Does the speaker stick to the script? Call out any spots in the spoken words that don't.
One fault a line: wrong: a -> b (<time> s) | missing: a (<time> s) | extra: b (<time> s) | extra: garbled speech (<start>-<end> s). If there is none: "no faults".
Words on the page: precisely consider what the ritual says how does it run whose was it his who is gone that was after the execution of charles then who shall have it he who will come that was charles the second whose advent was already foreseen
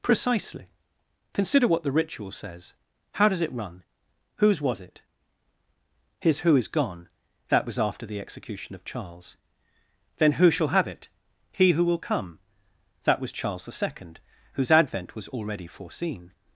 no faults